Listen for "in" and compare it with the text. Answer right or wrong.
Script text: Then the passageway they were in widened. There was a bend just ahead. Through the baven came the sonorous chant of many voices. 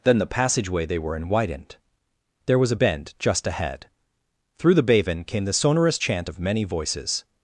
right